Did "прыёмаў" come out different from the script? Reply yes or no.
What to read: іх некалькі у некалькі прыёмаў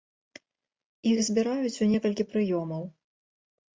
no